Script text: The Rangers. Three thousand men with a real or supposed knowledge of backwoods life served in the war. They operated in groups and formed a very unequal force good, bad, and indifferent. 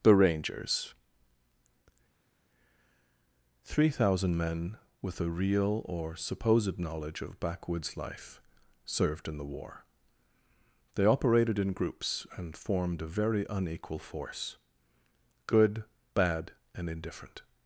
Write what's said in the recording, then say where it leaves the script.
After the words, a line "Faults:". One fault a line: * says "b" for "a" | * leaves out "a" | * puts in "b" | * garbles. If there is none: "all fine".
The Rangers. Three thousand men with a real or supposed knowledge of backwoods life served in the war. They operated in groups and formed a very unequal force good, bad, and indifferent.
Faults:
all fine